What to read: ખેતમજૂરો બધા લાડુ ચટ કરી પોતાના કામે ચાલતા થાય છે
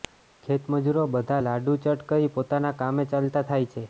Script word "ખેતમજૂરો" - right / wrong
right